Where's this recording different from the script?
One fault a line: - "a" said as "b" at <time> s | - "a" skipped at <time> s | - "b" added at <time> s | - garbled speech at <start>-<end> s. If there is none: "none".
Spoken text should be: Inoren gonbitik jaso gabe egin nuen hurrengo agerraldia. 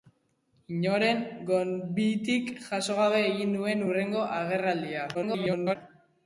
- garbled speech at 5.1-5.8 s